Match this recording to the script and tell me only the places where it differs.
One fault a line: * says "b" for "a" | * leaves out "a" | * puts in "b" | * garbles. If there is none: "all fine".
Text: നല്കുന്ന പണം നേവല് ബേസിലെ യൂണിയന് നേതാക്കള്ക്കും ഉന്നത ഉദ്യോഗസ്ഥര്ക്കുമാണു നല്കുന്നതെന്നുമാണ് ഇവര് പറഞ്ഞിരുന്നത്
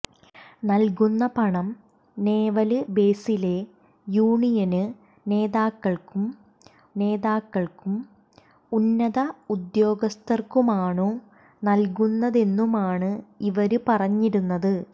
* puts in "നേതാക്കള്ക്കും"